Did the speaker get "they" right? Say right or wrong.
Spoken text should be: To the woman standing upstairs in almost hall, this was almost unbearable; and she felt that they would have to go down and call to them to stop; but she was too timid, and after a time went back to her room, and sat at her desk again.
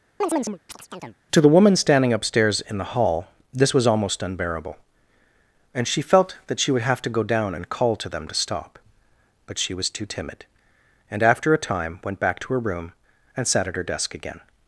wrong